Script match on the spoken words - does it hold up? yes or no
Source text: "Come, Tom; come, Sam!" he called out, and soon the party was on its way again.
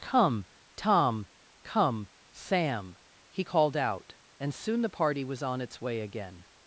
yes